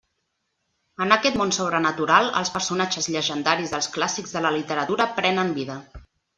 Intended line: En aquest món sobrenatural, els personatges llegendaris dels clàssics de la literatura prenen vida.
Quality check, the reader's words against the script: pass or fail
pass